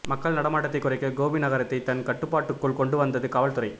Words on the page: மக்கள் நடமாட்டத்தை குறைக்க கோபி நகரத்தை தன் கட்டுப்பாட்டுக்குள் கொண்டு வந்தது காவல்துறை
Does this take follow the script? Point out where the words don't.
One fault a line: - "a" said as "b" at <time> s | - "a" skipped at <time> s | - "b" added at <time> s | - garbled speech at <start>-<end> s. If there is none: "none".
none